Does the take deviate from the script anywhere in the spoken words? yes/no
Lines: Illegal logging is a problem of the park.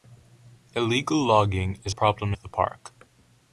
no